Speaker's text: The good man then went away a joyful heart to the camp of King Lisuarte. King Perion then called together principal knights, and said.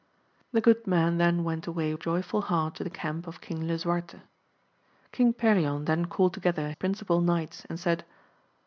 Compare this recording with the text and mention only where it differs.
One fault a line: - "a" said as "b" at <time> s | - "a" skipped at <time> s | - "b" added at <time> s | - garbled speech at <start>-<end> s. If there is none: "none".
none